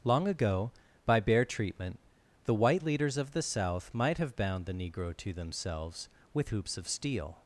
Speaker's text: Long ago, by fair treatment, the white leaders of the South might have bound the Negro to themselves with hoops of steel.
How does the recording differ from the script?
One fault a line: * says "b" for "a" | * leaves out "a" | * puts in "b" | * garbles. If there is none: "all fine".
* says "bare" for "fair"